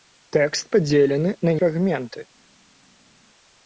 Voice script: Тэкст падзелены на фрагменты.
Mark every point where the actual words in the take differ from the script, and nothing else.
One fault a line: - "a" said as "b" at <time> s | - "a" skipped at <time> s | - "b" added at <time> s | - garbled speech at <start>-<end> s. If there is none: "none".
none